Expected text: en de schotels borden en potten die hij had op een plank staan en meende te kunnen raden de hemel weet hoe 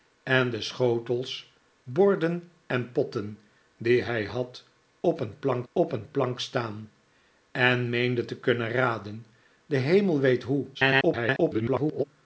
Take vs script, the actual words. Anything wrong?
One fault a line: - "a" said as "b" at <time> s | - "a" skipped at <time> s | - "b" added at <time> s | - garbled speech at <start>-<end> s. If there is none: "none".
- "op een plank" added at 5.7 s
- garbled speech at 10.7-12.0 s